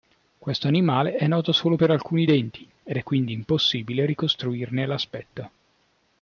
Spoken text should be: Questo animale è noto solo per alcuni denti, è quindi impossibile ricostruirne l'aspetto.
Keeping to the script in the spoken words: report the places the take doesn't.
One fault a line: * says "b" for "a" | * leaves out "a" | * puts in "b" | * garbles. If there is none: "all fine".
* puts in "ed"